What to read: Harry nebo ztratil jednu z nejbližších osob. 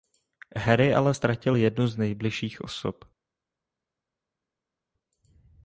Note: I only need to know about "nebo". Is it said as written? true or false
false